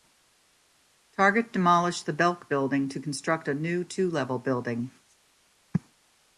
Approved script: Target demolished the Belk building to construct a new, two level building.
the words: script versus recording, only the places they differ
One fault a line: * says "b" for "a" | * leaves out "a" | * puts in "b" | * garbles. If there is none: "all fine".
all fine